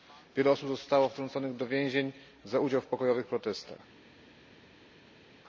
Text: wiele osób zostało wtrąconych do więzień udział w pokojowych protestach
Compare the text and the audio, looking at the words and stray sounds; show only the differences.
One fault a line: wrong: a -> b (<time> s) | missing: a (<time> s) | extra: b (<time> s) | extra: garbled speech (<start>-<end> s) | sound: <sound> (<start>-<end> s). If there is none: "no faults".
extra: za (2.4 s)